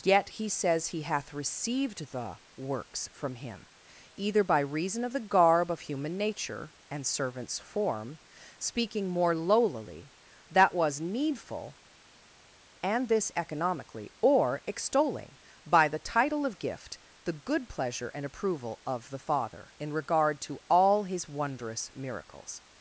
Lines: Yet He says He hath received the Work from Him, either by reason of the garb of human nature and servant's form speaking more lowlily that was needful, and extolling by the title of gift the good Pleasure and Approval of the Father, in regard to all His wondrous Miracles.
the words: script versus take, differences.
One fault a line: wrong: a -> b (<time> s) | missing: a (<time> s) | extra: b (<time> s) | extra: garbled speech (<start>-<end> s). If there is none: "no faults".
wrong: Work -> Works (2.6 s)
extra: this economically or (13.1 s)